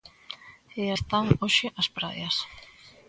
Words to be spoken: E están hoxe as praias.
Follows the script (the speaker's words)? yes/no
yes